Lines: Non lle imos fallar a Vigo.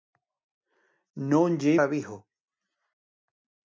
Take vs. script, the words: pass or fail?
fail